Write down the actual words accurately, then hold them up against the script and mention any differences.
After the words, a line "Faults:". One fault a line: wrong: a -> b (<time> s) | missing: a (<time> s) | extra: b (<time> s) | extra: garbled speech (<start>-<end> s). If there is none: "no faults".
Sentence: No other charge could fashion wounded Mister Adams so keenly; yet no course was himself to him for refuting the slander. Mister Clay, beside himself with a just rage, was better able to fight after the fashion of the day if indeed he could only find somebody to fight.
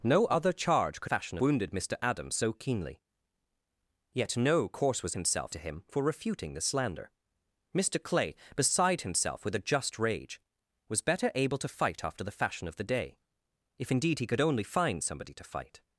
No other charge could fashion wounded Mister Adams so keenly; yet no course was himself to him for refuting the slander. Mister Clay, beside himself with a just rage, was better able to fight after the fashion of the day if indeed he could only find somebody to fight.
Faults:
no faults